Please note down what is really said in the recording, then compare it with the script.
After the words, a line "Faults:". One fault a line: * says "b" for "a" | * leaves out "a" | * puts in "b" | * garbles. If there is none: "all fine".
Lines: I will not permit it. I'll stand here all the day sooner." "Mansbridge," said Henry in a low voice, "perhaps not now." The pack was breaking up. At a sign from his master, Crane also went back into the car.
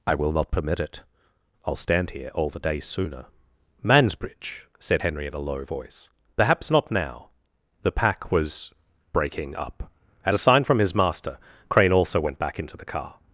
I will not permit it. I'll stand here all the day sooner." "Mansbridge," said Henry in a low voice, "perhaps not now." The pack was breaking up. At a sign from his master, Crane also went back into the car.
Faults:
all fine